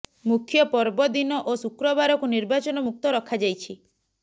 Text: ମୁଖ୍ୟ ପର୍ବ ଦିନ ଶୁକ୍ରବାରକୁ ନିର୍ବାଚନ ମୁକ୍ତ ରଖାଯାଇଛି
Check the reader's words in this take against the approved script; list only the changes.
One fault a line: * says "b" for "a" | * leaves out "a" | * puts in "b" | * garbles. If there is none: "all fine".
* puts in "ଓ"